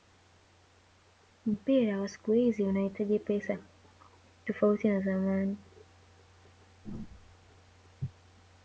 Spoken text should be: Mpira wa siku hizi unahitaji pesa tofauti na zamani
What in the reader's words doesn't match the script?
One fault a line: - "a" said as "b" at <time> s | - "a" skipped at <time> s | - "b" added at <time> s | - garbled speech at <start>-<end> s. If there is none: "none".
none